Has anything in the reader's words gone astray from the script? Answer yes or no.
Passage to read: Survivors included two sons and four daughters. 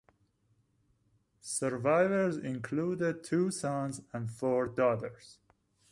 no